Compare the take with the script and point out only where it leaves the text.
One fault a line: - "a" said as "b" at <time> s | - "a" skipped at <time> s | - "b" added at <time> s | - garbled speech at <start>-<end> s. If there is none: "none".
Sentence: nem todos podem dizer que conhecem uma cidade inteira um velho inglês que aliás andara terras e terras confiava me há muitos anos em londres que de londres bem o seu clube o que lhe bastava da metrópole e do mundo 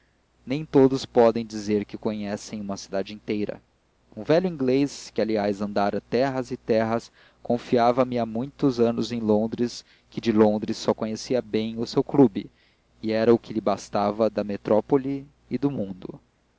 - "só conhecia" added at 10.8 s
- "e era" added at 13.0 s